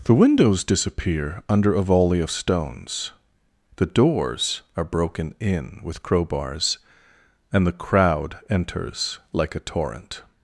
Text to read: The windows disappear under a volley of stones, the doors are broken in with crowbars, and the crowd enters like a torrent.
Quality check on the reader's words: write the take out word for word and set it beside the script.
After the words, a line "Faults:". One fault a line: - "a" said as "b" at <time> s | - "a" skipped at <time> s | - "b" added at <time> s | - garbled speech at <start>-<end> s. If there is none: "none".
The windows disappear under a volley of stones, the doors are broken in with crowbars, and the crowd enters like a torrent.
Faults:
none